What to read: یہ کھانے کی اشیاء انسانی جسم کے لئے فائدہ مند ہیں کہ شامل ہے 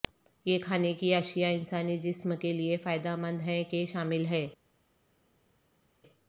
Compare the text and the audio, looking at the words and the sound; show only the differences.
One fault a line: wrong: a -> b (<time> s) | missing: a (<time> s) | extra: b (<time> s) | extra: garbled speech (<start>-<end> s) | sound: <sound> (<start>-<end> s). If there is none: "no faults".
no faults